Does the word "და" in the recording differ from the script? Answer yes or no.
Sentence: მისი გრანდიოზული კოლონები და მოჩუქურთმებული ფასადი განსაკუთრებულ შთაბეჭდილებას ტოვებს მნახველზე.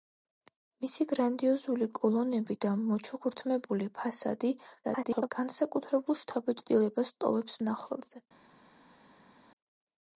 no